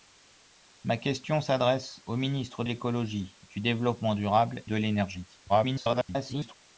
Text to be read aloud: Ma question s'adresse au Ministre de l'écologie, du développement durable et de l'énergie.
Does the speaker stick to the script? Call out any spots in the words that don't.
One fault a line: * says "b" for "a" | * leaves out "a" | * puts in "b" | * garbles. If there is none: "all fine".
* leaves out "de"
* leaves out "et"
* garbles